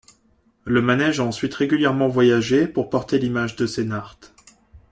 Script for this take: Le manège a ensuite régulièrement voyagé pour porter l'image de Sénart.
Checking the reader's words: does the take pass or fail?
pass